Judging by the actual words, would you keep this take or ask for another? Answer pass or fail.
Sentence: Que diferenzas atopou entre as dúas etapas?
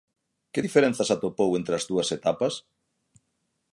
pass